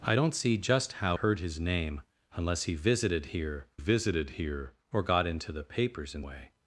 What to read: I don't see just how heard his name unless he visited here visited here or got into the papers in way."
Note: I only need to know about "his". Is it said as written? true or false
true